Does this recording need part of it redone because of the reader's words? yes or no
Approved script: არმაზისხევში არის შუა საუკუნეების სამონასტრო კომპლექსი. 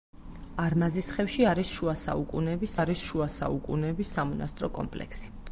yes